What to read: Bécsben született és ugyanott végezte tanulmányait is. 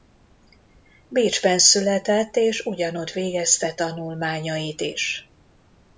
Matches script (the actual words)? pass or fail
pass